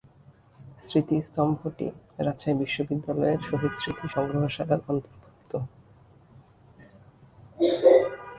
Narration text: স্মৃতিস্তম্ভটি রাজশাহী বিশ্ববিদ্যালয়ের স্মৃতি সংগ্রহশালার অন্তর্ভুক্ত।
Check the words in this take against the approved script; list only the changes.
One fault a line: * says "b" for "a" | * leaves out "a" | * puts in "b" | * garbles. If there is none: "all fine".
* puts in "শহীদ"